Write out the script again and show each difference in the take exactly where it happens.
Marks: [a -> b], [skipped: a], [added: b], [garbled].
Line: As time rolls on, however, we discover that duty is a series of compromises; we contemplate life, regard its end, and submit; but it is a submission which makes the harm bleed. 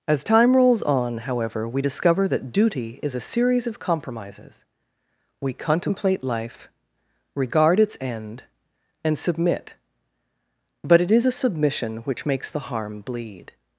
As time rolls on, however, we discover that duty is a series of compromises; we contemplate life, regard its end, and submit; but it is a submission which makes the harm bleed.